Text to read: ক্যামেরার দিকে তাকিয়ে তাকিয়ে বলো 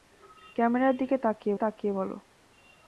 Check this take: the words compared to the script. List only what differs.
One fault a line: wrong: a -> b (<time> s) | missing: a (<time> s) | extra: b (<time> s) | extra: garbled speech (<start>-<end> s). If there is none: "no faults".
no faults